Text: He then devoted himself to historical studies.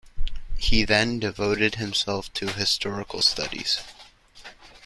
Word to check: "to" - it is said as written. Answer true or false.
true